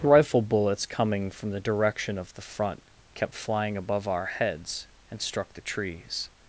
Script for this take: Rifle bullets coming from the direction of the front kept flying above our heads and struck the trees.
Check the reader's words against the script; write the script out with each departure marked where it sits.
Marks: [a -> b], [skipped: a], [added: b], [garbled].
Rifle bullets coming from the direction of the front kept flying above our heads and struck the trees.